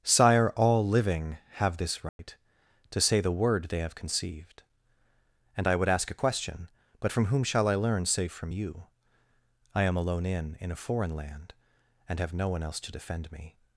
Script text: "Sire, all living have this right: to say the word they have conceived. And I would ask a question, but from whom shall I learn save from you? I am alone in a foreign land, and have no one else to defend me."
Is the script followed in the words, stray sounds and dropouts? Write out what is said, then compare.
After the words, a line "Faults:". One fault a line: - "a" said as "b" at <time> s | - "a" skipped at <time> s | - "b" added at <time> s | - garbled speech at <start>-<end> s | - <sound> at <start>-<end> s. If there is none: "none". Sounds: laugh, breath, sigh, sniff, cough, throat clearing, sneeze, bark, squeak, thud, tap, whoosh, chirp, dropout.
"Sire, all living have this right: to say the word they have conceived. And I would ask a question, but from whom shall I learn save from you? I am alone in in a foreign land, and have no one else to defend me."
Faults:
- dropout at 2.1-2.2 s
- "in" added at 10.6 s